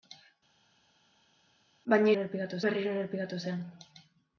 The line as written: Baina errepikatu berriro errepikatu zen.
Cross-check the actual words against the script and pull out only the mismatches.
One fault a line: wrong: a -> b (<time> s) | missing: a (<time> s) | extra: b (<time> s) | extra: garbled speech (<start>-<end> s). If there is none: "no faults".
no faults